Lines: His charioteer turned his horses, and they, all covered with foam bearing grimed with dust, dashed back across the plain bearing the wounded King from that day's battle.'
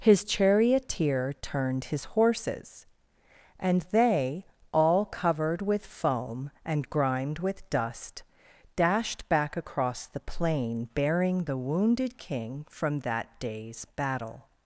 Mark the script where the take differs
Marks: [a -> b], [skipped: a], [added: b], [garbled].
His charioteer turned his horses, and they, all covered with foam [bearing -> and] grimed with dust, dashed back across the plain bearing the wounded King from that day's battle.'